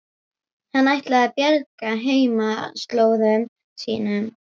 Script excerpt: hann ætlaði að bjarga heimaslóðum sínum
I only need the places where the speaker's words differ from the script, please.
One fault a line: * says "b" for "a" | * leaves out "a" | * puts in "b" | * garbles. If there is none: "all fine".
all fine